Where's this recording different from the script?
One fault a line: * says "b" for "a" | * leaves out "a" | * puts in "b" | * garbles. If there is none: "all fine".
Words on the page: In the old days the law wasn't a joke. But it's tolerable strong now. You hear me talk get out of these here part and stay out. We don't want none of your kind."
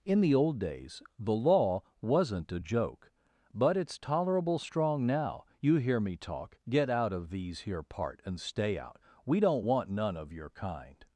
all fine